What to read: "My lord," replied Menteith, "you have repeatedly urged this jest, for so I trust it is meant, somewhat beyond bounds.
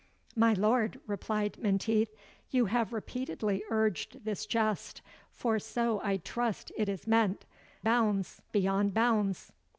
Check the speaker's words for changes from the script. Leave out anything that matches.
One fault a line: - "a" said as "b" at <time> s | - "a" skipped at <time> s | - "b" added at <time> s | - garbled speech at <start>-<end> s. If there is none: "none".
- "somewhat" said as "bounds" at 7.8 s